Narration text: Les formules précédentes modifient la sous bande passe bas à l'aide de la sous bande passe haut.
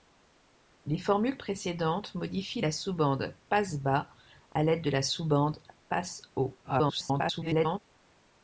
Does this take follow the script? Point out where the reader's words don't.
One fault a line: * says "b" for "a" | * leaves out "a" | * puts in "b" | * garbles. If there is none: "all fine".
* garbles